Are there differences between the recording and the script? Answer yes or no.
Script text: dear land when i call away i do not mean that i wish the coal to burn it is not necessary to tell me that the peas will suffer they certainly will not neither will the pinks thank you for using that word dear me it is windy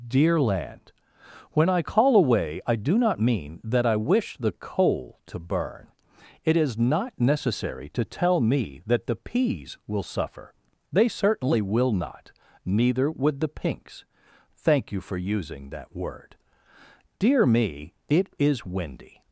yes